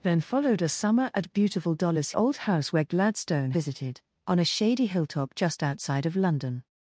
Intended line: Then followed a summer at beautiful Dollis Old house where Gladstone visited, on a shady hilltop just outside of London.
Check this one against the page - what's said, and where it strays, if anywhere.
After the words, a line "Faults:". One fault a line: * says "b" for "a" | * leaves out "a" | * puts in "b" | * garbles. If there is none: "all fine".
Then followed a summer at beautiful Dollis Old house where Gladstone visited, on a shady hilltop just outside of London.
Faults:
all fine